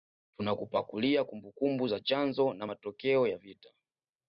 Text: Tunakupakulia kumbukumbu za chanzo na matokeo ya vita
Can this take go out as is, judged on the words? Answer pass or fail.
pass